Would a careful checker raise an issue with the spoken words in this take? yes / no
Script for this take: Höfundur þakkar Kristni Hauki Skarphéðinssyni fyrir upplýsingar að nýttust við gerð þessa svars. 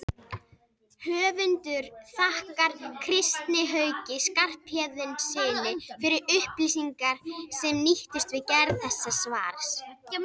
yes